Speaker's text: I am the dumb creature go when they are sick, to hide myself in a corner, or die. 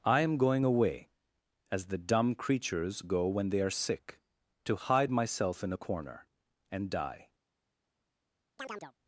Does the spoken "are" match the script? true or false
true